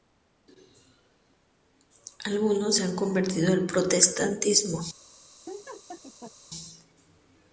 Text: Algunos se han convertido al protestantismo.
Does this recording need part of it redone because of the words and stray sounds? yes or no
yes